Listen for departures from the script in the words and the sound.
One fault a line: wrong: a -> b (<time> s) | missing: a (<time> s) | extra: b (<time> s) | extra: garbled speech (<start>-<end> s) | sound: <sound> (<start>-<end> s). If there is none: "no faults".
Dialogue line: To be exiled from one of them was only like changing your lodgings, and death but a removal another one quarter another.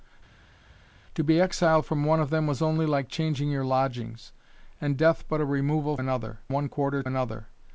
no faults